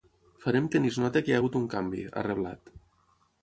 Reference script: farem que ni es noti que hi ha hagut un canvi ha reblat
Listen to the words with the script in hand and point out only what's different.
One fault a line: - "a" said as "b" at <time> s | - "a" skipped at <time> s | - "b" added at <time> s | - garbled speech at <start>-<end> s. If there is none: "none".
none